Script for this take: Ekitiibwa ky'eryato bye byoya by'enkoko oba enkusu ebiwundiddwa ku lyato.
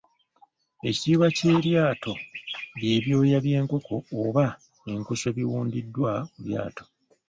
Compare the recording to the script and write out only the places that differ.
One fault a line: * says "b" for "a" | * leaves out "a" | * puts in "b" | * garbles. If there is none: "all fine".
all fine